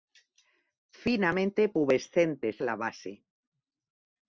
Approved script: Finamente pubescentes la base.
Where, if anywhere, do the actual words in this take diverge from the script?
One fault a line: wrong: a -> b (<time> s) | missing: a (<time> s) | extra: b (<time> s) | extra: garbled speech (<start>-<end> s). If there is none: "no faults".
no faults